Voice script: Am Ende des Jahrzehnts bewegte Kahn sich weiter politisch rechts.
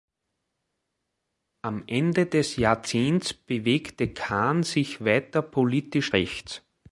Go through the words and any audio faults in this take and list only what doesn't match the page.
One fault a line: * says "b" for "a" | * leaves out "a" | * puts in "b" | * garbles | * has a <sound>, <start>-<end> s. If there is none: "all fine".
all fine